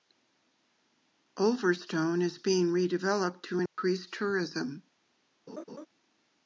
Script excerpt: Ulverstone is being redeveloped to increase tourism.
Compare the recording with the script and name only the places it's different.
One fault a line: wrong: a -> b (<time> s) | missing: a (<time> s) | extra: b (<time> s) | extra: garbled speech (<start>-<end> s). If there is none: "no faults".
no faults